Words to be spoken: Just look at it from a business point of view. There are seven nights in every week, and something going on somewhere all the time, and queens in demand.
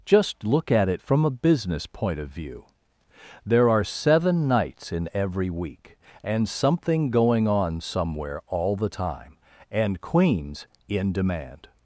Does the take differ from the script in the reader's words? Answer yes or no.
no